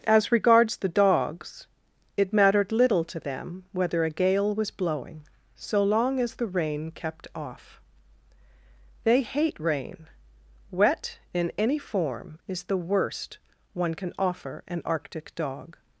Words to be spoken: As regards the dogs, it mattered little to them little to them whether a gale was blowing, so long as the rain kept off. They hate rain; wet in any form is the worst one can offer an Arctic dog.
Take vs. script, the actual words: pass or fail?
fail